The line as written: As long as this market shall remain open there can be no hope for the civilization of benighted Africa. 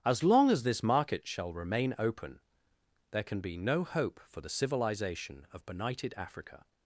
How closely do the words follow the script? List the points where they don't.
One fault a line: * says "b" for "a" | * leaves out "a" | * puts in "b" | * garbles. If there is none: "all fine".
all fine